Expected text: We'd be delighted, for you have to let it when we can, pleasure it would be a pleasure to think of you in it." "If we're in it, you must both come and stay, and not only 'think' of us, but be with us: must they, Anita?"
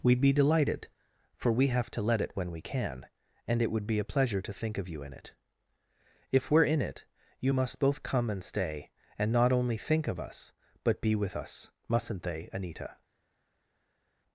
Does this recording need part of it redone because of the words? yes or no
yes